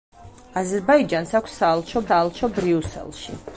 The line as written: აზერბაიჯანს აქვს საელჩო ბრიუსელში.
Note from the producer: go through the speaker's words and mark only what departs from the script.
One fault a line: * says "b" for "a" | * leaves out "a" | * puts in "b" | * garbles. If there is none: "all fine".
* puts in "საელჩო"